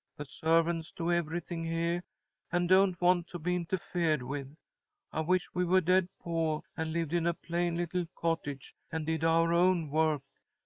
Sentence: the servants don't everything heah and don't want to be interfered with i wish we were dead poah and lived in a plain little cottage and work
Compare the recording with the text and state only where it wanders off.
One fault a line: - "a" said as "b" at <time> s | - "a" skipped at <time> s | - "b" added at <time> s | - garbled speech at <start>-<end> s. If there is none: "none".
- "don't" said as "do" at 0.9 s
- "did our own" added at 9.0 s